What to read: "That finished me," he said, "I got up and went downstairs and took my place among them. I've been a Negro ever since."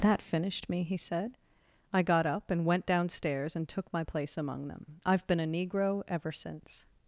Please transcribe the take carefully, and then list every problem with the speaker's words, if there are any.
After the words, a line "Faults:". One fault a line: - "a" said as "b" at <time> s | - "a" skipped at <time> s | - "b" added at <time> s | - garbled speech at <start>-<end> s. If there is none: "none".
"That finished me," he said, "I got up and went downstairs and took my place among them. I've been a Negro ever since."
Faults:
none